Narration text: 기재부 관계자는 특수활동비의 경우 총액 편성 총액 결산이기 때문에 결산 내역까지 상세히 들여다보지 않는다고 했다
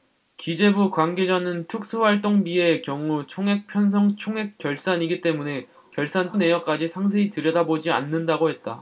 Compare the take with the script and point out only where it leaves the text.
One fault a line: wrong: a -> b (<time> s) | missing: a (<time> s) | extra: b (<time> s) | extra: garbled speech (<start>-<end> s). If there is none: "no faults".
no faults